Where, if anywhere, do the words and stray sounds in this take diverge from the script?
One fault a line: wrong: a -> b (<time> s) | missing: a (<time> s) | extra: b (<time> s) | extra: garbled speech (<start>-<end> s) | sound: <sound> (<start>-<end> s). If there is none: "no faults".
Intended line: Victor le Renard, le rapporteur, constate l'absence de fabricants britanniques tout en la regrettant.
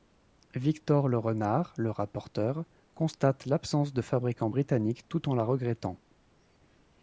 no faults